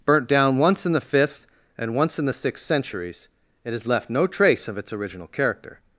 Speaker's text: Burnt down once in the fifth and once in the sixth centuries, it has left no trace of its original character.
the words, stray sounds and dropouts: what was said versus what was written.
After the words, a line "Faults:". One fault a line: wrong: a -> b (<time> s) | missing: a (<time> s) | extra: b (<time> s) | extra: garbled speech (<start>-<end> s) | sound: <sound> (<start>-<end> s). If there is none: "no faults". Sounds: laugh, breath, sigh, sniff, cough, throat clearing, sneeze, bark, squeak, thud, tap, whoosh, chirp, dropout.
Burnt down once in the fifth and once in the sixth centuries, it has left no trace of its original character.
Faults:
no faults